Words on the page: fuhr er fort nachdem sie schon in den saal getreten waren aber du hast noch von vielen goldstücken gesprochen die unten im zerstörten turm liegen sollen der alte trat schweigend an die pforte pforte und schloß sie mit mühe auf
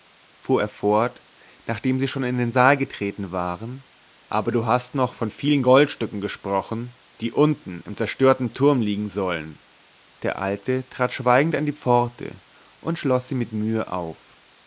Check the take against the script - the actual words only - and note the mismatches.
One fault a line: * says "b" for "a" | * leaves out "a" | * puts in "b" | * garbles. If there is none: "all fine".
* leaves out "pforte"